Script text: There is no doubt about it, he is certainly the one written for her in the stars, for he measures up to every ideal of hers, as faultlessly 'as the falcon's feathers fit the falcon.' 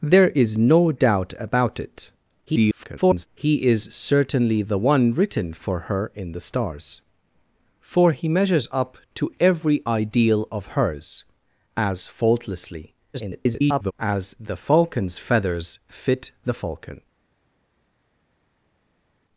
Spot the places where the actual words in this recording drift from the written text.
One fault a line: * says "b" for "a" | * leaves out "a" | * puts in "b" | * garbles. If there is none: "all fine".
* garbles
* garbles